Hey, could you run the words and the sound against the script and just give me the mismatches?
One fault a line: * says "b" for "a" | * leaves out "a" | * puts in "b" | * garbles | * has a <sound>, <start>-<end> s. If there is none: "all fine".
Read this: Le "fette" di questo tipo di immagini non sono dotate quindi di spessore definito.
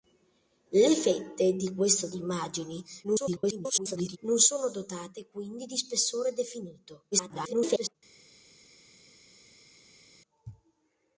* leaves out "tipo"
* garbles
* garbles